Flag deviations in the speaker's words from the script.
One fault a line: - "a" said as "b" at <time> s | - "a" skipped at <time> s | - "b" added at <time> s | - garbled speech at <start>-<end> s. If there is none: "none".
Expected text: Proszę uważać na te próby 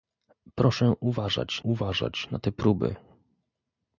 - "uważać" added at 1.6 s